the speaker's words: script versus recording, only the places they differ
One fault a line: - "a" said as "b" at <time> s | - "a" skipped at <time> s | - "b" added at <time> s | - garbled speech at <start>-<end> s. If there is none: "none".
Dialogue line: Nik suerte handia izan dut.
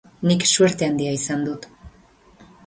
none